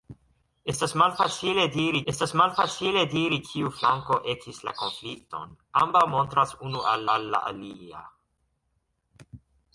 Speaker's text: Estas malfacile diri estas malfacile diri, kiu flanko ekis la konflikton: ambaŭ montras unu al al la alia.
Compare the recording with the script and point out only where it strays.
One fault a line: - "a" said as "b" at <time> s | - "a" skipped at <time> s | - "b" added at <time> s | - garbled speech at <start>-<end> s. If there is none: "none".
none